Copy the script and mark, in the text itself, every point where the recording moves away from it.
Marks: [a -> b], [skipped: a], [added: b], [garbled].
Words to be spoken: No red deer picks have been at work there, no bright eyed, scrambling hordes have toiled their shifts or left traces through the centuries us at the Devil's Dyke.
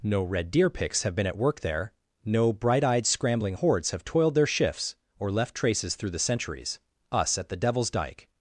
No red deer picks have been at work there, no bright eyed, scrambling hordes have toiled their shifts or left traces through the centuries us at the Devil's Dyke.